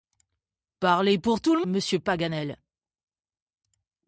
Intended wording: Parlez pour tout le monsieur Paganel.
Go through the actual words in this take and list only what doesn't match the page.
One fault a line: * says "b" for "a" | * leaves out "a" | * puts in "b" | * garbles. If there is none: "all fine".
all fine